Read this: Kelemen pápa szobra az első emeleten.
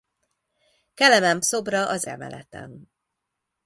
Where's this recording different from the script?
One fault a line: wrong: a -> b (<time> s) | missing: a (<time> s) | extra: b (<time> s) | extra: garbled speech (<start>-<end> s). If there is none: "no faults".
missing: pápa (1.4 s)
missing: első (2.1 s)